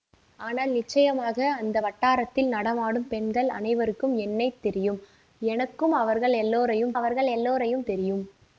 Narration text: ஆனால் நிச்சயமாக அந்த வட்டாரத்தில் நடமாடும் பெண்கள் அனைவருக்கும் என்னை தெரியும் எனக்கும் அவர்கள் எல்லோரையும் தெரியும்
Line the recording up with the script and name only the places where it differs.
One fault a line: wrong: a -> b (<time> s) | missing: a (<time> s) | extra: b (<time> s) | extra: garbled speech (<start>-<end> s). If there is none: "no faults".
extra: அவர்கள் எல்லோரையும் (7.0 s)